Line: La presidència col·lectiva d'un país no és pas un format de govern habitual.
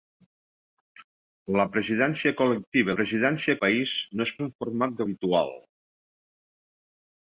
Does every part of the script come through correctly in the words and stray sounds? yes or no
no